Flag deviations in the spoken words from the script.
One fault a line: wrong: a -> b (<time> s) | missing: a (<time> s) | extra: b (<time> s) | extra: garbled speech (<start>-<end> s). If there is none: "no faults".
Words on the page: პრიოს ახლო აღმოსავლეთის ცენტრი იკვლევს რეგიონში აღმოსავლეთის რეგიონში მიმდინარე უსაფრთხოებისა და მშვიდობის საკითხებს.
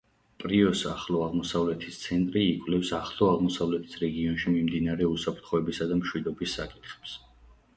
wrong: რეგიონში -> ახლო (3.0 s)